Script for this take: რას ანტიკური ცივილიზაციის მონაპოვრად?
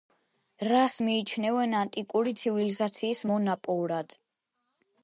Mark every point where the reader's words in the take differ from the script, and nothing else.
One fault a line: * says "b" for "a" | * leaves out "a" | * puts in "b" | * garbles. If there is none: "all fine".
* puts in "მიიჩნევენ"